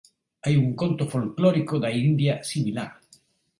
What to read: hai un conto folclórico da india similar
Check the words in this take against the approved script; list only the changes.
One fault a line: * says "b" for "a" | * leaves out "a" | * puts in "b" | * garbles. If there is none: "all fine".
all fine